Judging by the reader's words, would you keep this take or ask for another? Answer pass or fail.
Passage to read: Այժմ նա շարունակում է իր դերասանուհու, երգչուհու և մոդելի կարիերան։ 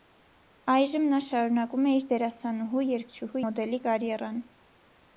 fail